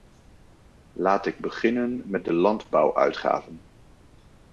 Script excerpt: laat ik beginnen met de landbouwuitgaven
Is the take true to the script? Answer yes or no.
yes